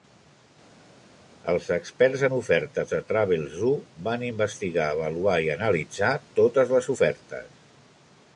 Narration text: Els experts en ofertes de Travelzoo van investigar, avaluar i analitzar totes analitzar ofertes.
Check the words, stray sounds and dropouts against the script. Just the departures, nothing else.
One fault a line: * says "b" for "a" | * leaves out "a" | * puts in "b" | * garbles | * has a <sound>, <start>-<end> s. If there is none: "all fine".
* says "les" for "analitzar"